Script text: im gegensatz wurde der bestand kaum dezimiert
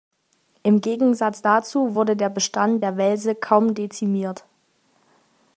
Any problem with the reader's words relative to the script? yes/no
yes